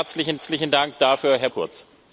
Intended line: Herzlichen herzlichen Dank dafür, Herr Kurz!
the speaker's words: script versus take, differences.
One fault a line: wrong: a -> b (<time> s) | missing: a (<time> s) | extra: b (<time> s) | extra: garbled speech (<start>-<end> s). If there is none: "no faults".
no faults